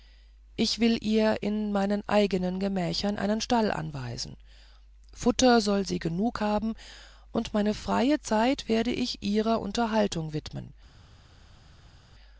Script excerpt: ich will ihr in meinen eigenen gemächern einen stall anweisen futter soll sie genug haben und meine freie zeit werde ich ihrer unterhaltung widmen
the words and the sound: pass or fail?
pass